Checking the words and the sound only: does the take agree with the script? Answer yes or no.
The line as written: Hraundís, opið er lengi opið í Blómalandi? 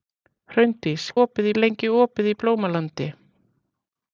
yes